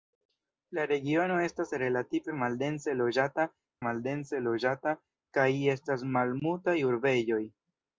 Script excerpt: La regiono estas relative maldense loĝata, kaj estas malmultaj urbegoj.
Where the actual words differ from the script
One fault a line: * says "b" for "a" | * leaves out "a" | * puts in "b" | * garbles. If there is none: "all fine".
* puts in "maldense loĝata"